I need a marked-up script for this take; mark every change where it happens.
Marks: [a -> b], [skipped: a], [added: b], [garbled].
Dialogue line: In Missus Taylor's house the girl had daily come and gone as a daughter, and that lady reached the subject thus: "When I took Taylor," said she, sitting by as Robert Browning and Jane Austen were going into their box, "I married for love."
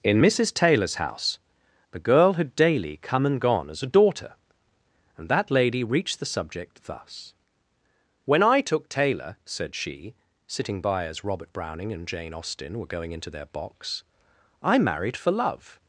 In Missus Taylor's house the girl had daily come and gone as a daughter, and that lady reached the subject thus: "When I took Taylor," said she, sitting by as Robert Browning and Jane Austen were going into their box, "I married for love."